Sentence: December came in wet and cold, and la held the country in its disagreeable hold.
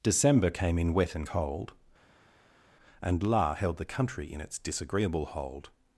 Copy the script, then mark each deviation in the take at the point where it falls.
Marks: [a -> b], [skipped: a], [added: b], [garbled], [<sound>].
December came in wet and cold, and la held the country in its disagreeable hold.